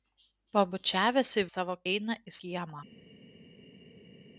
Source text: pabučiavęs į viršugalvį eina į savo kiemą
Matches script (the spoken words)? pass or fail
fail